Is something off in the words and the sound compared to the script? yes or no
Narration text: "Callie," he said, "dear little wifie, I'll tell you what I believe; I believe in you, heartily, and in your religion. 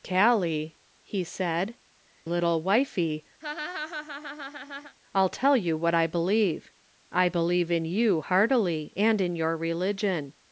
yes